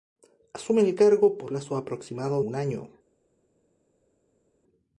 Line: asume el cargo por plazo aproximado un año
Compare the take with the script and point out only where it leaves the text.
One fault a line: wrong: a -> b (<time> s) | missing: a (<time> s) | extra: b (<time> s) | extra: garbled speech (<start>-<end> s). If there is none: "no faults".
no faults